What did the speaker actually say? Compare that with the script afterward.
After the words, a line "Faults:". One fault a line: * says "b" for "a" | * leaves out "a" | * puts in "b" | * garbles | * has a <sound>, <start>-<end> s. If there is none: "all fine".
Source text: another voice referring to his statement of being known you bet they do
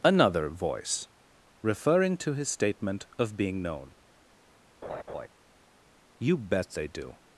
another voice referring to his statement of being known you bet they do
Faults:
* has a laugh, 4.8-5.3 s